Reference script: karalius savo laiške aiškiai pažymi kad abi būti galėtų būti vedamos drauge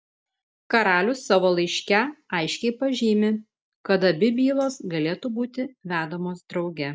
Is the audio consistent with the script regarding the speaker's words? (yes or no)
no